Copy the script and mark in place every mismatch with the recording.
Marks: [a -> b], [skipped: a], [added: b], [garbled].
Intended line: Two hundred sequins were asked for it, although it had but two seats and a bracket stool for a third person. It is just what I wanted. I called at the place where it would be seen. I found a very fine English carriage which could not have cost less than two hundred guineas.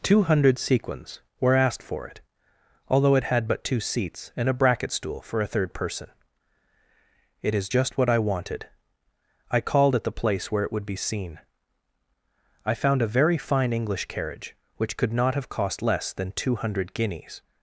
Two hundred sequins were asked for it, although it had but two seats and a bracket stool for a third person. It is just what I wanted. I called at the place where it would be seen. I found a very fine English carriage which could not have cost less than two hundred guineas.